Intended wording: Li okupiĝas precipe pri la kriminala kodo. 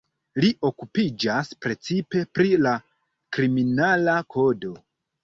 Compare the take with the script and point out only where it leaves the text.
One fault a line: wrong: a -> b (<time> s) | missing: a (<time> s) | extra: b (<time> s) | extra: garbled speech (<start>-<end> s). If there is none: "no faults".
no faults